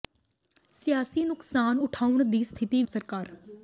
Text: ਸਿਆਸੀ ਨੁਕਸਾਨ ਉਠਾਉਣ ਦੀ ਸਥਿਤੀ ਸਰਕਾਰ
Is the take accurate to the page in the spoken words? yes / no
yes